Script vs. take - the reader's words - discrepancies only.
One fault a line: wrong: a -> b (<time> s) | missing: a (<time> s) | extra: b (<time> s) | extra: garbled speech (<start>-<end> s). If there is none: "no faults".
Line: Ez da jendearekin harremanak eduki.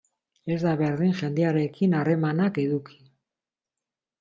extra: berdin (0.8 s)